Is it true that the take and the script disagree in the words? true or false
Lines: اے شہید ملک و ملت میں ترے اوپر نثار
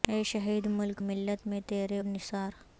true